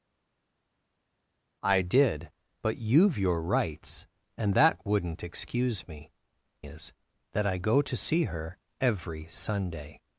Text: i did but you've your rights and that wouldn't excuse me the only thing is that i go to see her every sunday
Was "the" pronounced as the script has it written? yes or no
no